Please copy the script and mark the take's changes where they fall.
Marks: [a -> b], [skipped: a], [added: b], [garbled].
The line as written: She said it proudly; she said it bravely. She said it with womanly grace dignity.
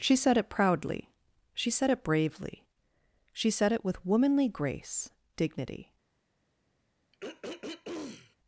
She said it proudly; she said it bravely. She said it with womanly grace dignity.